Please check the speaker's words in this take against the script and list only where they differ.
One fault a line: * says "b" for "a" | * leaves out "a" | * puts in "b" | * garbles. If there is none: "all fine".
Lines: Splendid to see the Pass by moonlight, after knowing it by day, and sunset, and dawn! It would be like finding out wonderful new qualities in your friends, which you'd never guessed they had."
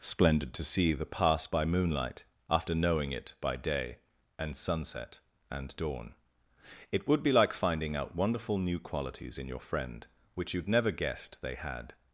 * says "friend" for "friends"